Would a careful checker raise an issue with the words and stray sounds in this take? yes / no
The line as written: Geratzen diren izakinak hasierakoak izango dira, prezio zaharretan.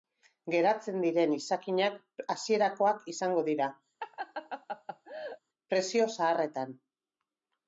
yes